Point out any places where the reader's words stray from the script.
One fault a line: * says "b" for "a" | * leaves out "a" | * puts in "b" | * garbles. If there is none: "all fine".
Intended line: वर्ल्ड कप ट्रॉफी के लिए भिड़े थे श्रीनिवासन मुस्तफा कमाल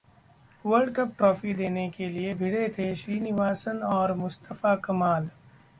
* puts in "देने"
* puts in "और"